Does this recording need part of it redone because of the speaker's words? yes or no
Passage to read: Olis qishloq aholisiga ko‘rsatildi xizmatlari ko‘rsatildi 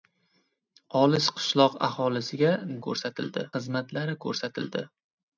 no